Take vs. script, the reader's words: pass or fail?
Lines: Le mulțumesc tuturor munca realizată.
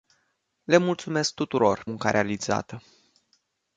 pass